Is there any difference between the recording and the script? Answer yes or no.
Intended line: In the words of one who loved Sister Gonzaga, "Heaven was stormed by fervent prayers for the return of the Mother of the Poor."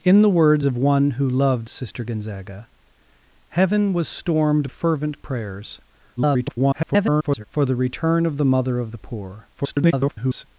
yes